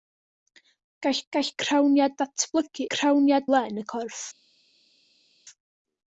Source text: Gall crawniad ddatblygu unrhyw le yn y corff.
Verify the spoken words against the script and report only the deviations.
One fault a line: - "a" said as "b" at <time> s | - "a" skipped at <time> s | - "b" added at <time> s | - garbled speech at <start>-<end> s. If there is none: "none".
- "gall" added at 1.3 s
- "unrhyw" said as "crawniad" at 2.9 s